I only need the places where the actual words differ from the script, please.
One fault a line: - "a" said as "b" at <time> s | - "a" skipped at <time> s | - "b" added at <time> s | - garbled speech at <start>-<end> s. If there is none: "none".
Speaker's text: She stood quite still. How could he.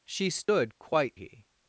- "still How could" skipped at 1.2 s